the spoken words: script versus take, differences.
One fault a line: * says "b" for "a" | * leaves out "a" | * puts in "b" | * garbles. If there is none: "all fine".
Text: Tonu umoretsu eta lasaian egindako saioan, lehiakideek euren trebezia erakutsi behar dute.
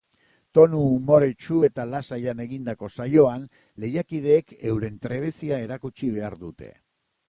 all fine